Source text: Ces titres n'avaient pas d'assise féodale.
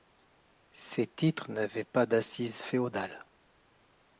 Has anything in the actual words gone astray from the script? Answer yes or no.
no